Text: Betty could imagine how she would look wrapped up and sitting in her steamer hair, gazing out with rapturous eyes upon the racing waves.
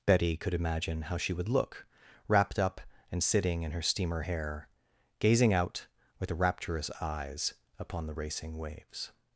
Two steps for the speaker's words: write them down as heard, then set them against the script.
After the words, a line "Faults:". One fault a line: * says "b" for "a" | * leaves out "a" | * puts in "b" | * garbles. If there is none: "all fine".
Betty could imagine how she would look wrapped up and sitting in her steamer hair, gazing out with rapturous eyes upon the racing waves.
Faults:
all fine